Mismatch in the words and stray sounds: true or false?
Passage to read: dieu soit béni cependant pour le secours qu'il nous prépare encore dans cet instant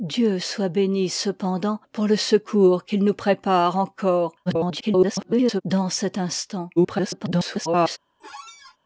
true